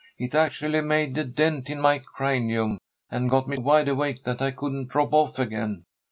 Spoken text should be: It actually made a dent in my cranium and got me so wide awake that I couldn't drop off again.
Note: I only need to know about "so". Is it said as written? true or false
false